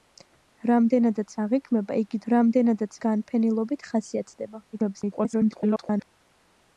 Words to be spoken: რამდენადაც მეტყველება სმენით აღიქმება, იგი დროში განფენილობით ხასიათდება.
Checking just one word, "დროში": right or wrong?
wrong